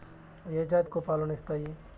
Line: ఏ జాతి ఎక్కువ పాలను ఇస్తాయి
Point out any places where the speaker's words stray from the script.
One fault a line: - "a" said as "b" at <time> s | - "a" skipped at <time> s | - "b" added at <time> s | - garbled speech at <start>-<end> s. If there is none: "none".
none